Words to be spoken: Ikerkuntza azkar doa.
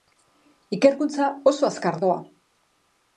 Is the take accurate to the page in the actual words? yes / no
no